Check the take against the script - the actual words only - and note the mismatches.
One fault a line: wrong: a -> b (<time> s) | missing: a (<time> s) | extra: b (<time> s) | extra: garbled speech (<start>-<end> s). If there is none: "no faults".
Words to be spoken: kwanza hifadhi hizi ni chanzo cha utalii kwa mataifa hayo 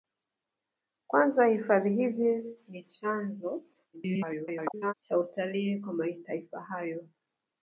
extra: garbled speech (3.9-4.9 s)